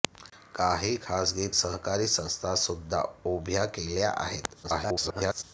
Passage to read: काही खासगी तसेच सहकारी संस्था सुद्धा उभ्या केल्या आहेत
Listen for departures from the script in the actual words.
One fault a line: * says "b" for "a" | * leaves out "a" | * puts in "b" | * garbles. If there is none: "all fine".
* leaves out "तसेच"
* garbles